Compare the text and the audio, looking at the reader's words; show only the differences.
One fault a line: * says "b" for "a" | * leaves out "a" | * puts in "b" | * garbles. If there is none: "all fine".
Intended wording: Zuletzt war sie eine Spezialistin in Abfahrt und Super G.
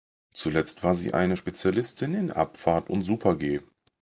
all fine